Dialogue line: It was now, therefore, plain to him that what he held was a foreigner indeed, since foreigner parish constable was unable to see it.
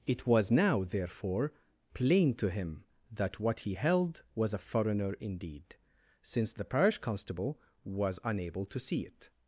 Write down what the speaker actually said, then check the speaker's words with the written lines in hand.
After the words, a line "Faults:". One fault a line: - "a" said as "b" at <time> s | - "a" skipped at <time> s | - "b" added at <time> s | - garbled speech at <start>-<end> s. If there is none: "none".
It was now, therefore, plain to him that what he held was a foreigner indeed, since the parish constable was unable to see it.
Faults:
- "foreigner" said as "the" at 6.5 s